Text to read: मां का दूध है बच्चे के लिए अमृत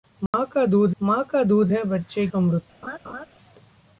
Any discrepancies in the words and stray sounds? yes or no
yes